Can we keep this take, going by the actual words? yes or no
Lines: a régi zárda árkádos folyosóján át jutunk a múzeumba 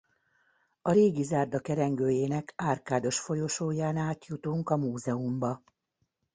no